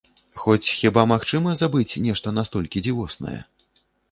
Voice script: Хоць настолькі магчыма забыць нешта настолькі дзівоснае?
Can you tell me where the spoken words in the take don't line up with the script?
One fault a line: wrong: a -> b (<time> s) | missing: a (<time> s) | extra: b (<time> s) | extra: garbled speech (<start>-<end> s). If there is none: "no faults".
wrong: настолькі -> хіба (0.8 s)